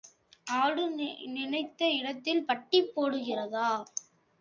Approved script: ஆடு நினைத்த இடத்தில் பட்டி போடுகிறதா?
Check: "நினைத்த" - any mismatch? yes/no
no